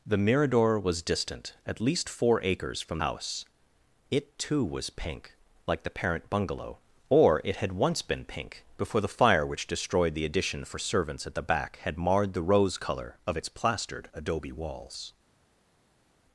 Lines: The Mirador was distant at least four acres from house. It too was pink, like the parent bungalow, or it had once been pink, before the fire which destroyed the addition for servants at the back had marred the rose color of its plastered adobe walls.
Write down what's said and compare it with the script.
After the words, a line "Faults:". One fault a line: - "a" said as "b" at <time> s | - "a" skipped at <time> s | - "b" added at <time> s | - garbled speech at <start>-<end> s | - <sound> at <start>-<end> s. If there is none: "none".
The Mirador was distant at least four acres from house. It too was pink, like the parent bungalow, or it had once been pink, before the fire which destroyed the addition for servants at the back had marred the rose color of its plastered adobe walls.
Faults:
none